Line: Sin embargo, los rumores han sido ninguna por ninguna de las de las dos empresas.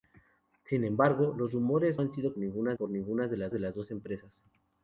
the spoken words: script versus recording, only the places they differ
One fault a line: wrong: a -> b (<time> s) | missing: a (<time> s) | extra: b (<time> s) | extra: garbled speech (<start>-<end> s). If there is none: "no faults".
no faults